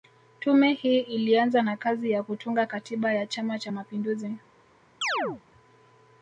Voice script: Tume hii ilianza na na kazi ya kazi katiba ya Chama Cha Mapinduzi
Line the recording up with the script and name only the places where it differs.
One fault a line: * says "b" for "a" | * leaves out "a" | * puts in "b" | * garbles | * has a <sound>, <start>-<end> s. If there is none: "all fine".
* leaves out "na"
* says "kutunga" for "kazi"
* has a chirp, 5.0-5.4 s